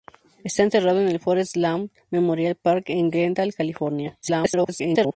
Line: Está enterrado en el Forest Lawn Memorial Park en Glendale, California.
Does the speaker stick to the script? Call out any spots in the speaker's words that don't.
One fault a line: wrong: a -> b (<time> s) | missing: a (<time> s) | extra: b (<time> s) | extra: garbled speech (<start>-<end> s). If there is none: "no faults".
extra: garbled speech (4.2-5.2 s)